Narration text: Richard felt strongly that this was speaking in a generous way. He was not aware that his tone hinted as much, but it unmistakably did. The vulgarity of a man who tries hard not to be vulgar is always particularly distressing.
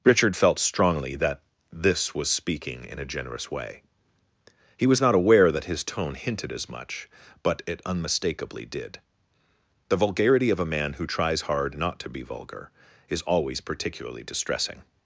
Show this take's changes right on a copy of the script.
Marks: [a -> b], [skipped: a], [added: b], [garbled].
Richard felt strongly that this was speaking in a generous way. He was not aware that his tone hinted as much, but it unmistakably did. The vulgarity of a man who tries hard not to be vulgar is always particularly distressing.